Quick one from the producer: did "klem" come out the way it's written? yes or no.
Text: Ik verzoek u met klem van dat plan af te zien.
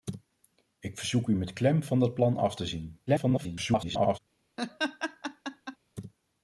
yes